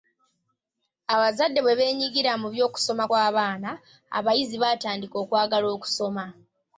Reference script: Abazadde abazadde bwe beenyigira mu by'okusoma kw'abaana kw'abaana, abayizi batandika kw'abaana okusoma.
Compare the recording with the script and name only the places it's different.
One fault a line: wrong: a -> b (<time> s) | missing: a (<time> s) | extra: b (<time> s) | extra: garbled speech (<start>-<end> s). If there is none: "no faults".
missing: abazadde (1.6 s)
missing: kw'abaana (3.7 s)
wrong: kw'abaana -> okwagala (5.2 s)